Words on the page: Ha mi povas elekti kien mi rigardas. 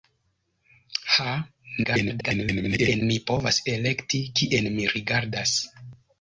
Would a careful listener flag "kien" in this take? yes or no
no